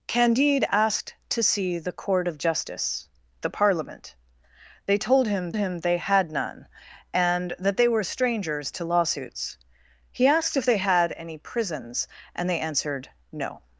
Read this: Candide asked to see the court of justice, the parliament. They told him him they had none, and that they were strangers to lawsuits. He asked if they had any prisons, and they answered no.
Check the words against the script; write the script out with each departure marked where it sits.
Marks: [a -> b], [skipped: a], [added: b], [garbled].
Candide asked to see the court of justice, the parliament. They told him him they had none, and that they were strangers to lawsuits. He asked if they had any prisons, and they answered no.